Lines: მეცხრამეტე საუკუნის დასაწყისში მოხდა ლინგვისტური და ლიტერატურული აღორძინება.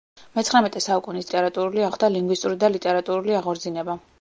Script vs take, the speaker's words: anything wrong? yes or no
yes